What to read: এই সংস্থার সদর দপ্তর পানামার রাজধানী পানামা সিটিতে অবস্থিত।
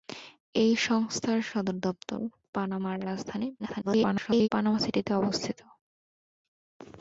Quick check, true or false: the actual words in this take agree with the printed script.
false